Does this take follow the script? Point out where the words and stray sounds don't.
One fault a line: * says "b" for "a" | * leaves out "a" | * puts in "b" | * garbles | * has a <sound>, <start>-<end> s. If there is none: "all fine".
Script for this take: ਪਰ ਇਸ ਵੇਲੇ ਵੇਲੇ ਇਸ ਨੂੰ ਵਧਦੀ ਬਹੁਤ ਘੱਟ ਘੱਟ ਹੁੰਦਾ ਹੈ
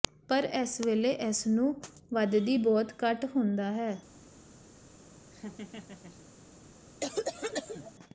* leaves out "ਵੇਲੇ"
* leaves out "ਘੱਟ"
* has a laugh, 5.3-6.3 s
* has a cough, 7.0-7.9 s